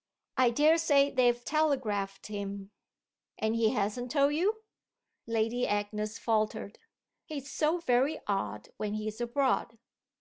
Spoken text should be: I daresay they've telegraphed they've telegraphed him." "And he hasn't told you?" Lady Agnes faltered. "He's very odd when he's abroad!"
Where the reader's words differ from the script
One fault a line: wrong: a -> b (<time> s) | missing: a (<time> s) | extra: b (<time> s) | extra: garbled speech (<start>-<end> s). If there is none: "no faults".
missing: they've telegraphed (2.2 s)
extra: so (7.5 s)